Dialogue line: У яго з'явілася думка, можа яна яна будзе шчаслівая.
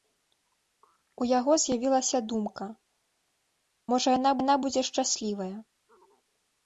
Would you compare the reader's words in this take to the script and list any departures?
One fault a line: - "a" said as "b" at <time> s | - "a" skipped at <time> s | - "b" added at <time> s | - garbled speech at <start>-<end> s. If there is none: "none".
none